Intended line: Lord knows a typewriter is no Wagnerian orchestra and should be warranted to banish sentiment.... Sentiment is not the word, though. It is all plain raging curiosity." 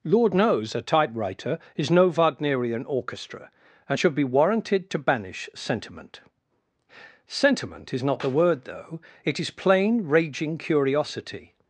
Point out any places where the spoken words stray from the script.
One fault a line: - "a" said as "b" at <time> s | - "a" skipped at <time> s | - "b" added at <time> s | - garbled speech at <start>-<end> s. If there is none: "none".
- "all" skipped at 9.5 s